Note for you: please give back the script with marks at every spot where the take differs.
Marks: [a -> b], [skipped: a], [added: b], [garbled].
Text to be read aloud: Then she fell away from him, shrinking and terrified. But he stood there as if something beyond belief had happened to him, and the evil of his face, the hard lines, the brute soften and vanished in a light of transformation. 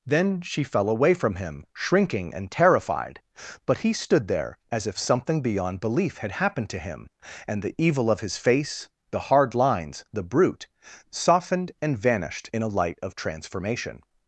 Then she fell away from him, shrinking and terrified. But he stood there as if something beyond belief had happened to him, and the evil of his face, the hard lines, the brute [soften -> softened] and vanished in a light of transformation.